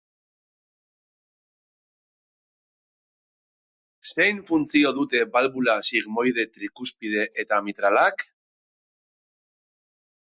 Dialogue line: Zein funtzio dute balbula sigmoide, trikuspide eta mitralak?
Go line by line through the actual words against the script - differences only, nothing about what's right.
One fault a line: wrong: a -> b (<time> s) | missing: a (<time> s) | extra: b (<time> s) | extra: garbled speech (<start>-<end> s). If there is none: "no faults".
no faults